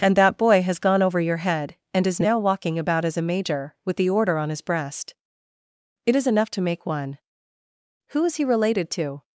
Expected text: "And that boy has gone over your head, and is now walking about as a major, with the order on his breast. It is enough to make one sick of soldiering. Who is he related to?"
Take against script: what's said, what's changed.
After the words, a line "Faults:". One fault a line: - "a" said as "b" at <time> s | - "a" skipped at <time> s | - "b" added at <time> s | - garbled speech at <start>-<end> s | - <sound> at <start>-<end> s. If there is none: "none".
"And that boy has gone over your head, and is now walking about as a major, with the order on his breast. It is enough to make one. Who is he related to?"
Faults:
- "sick of soldiering" skipped at 7.2 s